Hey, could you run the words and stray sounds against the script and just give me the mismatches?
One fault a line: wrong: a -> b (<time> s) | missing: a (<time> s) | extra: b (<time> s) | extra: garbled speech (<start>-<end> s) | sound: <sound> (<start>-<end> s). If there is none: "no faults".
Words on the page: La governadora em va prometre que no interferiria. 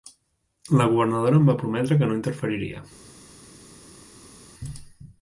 no faults